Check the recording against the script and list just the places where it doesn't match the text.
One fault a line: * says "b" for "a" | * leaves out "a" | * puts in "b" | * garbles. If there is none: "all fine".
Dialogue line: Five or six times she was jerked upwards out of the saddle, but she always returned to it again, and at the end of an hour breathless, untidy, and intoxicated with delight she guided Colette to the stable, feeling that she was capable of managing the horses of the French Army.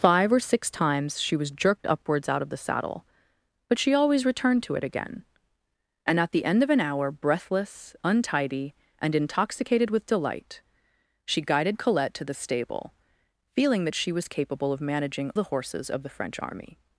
all fine